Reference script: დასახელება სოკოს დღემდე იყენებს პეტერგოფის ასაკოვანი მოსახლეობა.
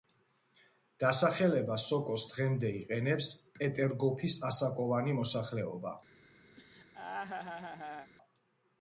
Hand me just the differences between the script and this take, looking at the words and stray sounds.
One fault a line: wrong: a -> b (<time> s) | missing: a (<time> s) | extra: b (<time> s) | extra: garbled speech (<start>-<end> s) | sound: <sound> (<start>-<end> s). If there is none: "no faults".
sound: laugh (6.6-8.1 s)